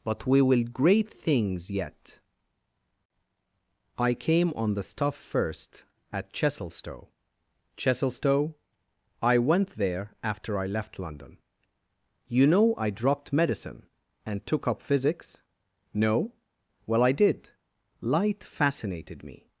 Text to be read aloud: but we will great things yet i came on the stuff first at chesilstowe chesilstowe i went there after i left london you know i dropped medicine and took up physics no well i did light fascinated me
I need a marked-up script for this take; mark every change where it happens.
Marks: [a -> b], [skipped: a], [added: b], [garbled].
but we will great things yet i came on the stuff first at chesilstowe chesilstowe i went there after i left london you know i dropped medicine and took up physics no well i did light fascinated me